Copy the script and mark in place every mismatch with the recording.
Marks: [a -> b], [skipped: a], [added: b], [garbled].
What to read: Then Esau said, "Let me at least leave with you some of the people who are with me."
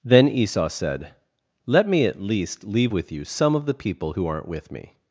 Then Esau said, "Let me at least leave with you some of the people who [are -> aren't] with me."